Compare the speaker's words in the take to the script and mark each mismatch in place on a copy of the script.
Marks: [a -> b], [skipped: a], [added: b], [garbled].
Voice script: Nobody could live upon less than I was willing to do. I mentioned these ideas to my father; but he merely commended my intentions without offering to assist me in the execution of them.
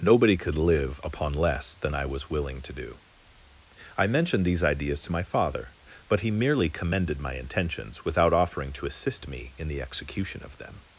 Nobody could live upon less than I was willing to do. I mentioned these ideas to my father; but he merely commended my intentions without offering to assist me in the execution of them.